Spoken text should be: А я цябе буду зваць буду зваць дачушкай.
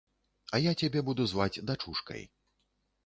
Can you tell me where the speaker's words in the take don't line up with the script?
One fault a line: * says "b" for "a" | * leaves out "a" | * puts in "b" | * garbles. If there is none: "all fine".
* leaves out "буду зваць"